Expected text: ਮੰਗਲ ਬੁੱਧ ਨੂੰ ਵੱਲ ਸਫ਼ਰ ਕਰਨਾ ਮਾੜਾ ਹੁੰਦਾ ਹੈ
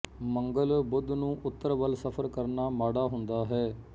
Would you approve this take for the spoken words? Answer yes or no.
no